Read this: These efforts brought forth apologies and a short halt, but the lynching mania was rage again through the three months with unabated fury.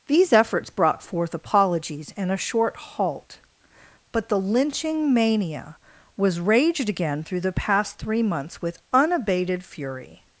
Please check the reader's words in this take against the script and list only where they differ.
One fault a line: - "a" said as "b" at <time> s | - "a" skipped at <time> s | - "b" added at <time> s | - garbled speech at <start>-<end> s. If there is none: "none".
- "rage" said as "raged" at 6.4 s
- "past" added at 7.5 s